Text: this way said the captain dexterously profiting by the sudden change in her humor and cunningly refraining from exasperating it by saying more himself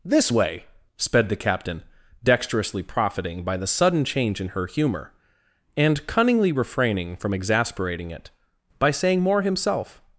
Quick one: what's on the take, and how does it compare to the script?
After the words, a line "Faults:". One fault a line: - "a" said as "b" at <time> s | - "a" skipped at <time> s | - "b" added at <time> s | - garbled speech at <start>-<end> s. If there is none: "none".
this way sped the captain dexterously profiting by the sudden change in her humor and cunningly refraining from exasperating it by saying more himself
Faults:
- "said" said as "sped" at 1.0 s